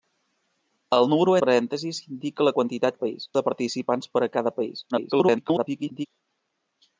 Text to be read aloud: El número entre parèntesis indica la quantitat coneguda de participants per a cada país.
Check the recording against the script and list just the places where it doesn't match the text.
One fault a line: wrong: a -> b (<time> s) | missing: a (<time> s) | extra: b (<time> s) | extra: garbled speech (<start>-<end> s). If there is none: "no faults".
missing: entre (1.4 s)
wrong: coneguda -> país (3.0 s)
extra: garbled speech (4.9-6.1 s)